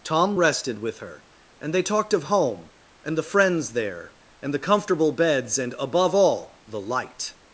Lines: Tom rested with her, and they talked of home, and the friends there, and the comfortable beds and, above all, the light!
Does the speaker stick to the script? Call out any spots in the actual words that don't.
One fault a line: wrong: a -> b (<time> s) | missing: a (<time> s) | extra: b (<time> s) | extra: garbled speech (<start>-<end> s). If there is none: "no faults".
no faults